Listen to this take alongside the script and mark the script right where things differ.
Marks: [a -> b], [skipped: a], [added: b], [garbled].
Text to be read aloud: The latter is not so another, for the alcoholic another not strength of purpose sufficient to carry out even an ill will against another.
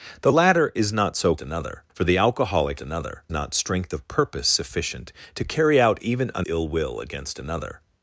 The latter is not so another, for the alcoholic another not strength of purpose sufficient to carry out even an ill will against another.